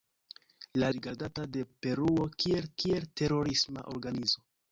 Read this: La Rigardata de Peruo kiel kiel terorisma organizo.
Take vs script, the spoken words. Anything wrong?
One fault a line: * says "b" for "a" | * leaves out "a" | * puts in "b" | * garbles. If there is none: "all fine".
all fine